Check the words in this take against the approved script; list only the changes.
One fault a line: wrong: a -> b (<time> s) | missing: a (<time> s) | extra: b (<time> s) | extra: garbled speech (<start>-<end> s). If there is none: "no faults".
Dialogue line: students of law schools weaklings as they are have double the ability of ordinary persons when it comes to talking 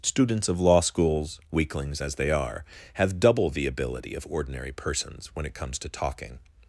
no faults